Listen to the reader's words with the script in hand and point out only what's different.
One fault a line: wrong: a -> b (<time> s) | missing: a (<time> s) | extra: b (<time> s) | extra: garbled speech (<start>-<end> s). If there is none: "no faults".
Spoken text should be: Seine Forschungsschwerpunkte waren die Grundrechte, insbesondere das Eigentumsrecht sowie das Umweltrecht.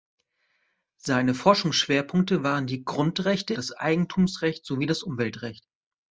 missing: insbesondere (3.5 s)